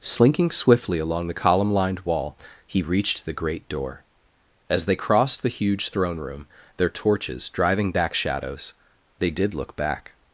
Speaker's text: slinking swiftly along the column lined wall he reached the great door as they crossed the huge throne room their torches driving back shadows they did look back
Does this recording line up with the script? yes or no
yes